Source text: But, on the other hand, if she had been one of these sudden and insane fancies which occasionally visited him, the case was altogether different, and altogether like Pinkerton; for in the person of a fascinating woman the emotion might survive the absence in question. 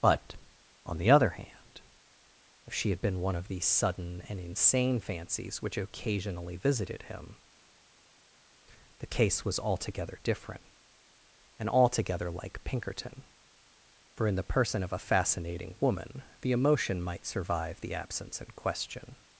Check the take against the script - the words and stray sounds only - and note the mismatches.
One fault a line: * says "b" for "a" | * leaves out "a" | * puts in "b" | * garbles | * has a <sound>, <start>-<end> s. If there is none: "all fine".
all fine